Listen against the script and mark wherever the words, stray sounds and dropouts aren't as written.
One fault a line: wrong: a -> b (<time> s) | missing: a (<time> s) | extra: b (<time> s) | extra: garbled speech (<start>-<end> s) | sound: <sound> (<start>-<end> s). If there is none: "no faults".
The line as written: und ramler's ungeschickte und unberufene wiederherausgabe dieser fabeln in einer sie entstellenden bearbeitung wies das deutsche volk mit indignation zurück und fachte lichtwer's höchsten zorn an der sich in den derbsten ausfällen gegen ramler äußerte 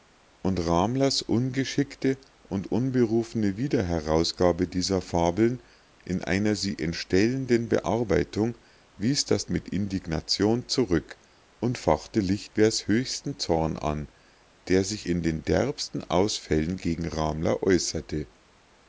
missing: deutsche volk (9.4 s)